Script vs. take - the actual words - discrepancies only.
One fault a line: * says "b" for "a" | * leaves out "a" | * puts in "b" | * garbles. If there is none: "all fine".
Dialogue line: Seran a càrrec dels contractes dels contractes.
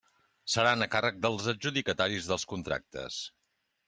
* says "adjudicataris" for "contractes"